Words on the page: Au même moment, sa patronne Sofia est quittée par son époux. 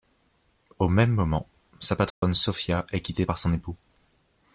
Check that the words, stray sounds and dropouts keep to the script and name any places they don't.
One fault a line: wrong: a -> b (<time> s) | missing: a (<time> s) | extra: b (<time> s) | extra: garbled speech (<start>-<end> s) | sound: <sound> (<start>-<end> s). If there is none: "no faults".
sound: dropout (2.1-2.2 s)